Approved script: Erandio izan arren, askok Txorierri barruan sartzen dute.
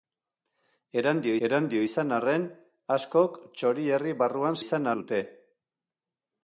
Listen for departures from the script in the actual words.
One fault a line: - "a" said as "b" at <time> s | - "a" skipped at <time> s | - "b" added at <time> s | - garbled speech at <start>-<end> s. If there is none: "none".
- "erandio" added at 1.5 s
- "sartzen" said as "izan" at 4.6 s